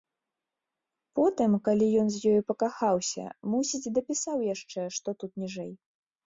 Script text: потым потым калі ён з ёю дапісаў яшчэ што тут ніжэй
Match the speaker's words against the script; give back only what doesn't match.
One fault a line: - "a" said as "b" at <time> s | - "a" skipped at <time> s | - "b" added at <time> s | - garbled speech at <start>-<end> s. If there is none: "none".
- "потым" skipped at 1.5 s
- "пакахаўся мусіць" added at 2.5 s